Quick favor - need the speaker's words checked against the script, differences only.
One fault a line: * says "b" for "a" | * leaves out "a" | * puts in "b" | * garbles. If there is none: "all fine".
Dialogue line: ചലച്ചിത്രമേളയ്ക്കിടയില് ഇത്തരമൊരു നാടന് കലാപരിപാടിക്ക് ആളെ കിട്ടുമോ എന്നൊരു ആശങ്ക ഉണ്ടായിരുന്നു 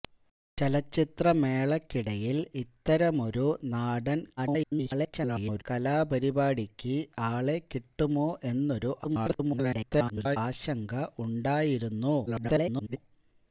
* garbles
* garbles
* garbles